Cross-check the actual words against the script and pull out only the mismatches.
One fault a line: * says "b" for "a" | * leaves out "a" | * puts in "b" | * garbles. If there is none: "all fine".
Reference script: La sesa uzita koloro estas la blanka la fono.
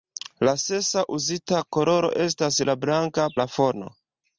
all fine